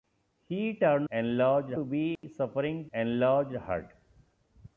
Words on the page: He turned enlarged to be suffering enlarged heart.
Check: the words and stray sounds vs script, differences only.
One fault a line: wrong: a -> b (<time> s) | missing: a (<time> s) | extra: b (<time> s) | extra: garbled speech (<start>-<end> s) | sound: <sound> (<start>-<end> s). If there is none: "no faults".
sound: dropout (2.2-2.2 s)